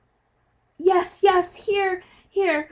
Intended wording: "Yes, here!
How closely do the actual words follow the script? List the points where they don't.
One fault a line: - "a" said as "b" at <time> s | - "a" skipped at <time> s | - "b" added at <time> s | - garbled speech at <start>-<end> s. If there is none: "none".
- "yes here" added at 1.2 s